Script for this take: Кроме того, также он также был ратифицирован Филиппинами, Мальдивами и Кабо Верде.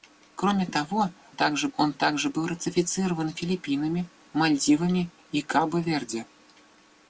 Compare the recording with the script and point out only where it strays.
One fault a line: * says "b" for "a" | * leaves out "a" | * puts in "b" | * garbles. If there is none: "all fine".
all fine